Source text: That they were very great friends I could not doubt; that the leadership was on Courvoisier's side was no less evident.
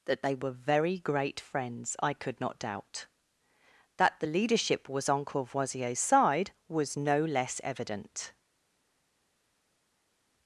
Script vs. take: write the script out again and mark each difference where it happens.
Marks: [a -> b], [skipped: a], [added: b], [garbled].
That they were very great friends I could not doubt; that the leadership was on Courvoisier's side was no less evident.